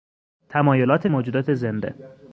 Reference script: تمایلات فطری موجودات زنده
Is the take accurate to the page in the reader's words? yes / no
no